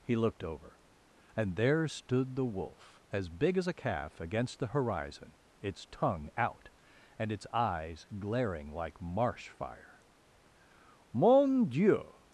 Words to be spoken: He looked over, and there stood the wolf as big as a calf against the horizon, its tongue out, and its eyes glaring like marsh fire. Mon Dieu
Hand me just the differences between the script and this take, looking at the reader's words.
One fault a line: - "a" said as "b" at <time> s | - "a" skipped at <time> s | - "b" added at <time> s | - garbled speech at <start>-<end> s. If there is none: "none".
none